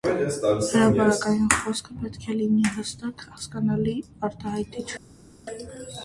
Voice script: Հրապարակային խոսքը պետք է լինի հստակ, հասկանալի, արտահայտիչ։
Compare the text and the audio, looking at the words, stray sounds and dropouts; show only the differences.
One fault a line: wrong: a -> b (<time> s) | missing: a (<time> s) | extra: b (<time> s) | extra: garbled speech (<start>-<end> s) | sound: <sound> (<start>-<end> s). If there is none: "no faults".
no faults